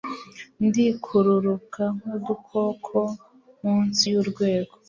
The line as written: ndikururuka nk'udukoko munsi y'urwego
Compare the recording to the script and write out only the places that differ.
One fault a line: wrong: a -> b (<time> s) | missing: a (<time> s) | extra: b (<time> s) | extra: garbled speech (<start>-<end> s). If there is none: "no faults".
no faults